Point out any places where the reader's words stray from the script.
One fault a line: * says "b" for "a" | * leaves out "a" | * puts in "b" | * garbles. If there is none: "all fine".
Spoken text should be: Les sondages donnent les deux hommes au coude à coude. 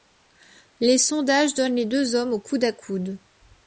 all fine